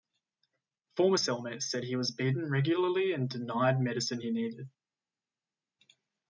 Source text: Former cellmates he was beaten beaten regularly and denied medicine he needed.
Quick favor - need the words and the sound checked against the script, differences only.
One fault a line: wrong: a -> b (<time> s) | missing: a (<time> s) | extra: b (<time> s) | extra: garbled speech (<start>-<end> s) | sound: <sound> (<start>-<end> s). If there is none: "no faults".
extra: said (1.6 s)
missing: beaten (2.5 s)